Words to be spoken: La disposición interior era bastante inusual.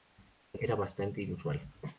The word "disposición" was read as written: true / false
false